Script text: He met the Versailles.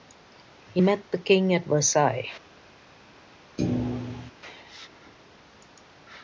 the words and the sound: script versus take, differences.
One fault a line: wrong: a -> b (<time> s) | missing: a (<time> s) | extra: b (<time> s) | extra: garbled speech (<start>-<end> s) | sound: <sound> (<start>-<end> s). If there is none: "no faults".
extra: King at (1.2 s)
sound: thud (3.6-4.3 s)